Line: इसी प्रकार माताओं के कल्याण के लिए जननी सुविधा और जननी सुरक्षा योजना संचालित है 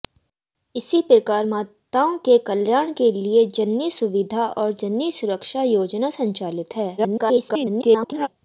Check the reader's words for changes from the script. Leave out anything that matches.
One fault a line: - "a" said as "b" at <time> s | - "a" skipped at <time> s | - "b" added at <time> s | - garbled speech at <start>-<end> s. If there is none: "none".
- garbled speech at 7.0-8.3 s